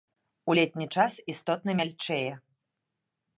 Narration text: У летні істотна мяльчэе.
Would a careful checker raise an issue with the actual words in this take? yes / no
yes